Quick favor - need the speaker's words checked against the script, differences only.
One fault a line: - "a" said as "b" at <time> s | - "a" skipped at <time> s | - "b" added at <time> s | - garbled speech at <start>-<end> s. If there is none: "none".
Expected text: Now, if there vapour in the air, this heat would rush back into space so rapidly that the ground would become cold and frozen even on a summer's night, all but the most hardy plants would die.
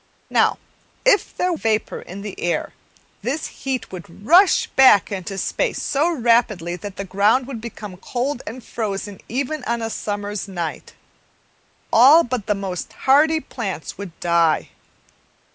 none